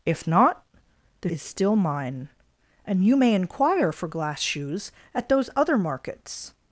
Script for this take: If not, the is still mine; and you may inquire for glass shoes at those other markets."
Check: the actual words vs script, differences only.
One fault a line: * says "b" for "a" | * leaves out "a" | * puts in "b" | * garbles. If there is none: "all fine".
all fine